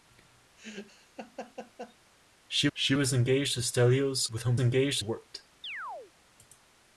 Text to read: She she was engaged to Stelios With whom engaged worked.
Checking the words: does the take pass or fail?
pass